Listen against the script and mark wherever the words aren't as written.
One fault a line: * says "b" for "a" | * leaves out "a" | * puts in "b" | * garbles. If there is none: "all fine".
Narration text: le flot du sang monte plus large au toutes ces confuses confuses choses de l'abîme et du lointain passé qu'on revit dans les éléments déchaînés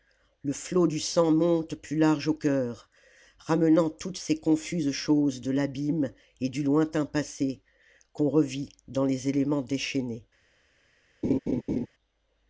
* puts in "cœur ramenant"
* leaves out "confuses"